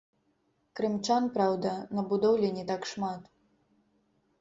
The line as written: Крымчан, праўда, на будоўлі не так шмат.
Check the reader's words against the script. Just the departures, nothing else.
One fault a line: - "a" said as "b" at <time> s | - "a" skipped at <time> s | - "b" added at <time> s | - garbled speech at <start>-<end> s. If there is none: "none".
none